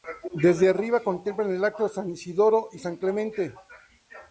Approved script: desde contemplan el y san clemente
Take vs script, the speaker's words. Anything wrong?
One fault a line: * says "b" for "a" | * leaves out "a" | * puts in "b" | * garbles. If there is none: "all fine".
* puts in "arriba"
* puts in "acto san isidoro"